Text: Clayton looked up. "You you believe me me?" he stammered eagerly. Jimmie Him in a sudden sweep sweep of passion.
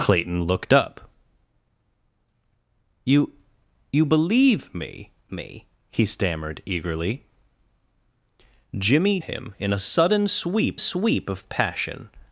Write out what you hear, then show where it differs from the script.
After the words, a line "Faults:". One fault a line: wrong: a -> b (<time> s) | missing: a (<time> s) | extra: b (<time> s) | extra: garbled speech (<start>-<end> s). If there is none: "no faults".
Clayton looked up. "You you believe me me?" he stammered eagerly. Jimmie Him in a sudden sweep sweep of passion.
Faults:
no faults